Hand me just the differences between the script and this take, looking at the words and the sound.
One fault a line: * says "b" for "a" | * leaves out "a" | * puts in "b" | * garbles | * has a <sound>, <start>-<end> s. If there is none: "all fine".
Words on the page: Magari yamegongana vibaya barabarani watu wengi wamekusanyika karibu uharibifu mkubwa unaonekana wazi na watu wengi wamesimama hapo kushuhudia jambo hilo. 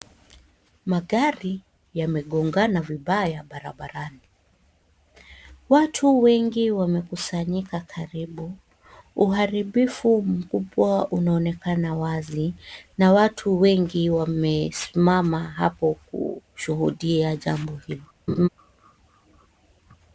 * has a laugh, 18.3-18.5 s